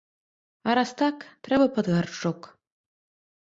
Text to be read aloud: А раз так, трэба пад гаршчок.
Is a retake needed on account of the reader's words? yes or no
no